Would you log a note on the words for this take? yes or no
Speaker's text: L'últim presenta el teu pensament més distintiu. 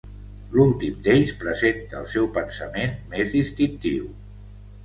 yes